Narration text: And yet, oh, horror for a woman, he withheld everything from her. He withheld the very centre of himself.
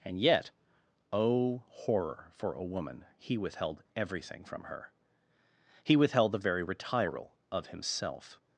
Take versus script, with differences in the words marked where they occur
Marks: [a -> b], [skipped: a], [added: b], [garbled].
And yet, oh, horror for a woman, he withheld everything from her. He withheld the very [centre -> retiral] of himself.